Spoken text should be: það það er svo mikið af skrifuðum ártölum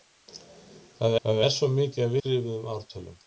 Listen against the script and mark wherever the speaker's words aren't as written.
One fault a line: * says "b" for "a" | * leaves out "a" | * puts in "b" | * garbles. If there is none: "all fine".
all fine